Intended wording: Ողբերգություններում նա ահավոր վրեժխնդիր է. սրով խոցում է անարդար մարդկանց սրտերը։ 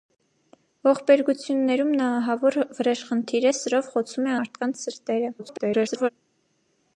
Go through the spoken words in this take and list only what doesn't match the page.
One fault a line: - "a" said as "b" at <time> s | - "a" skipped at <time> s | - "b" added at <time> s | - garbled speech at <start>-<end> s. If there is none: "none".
- "անարդար" skipped at 4.3 s
- garbled speech at 5.4-6.1 s